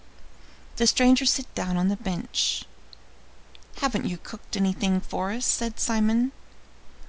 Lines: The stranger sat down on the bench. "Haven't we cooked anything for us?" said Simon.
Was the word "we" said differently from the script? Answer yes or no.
yes